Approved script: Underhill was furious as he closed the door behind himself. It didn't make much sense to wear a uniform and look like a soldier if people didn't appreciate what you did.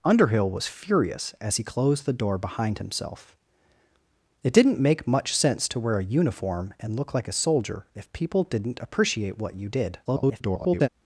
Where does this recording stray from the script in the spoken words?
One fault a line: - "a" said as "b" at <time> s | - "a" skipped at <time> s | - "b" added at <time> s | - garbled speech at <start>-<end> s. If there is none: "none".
- garbled speech at 10.0-10.9 s